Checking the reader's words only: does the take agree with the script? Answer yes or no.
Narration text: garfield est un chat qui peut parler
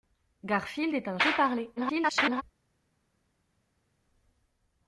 no